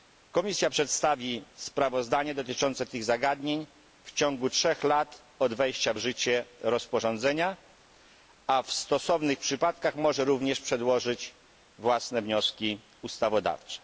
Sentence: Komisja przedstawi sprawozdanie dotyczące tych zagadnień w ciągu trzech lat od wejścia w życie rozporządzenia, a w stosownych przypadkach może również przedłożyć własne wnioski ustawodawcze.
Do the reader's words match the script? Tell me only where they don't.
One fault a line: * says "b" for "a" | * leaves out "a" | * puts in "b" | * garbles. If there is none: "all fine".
all fine